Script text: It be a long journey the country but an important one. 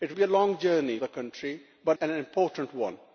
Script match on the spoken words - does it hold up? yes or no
yes